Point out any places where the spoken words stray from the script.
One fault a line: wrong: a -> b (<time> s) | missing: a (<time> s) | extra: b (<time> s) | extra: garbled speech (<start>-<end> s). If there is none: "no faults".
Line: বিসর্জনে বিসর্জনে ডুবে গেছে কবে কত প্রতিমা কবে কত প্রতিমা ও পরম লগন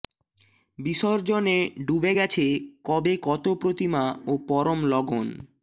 missing: বিসর্জনে (1.6 s)
missing: কবে কত প্রতিমা (4.0 s)